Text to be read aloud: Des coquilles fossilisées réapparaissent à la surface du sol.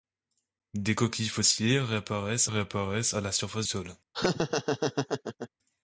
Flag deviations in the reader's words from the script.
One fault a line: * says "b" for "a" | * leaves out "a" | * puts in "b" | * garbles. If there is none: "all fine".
* puts in "réapparaissent"
* leaves out "du"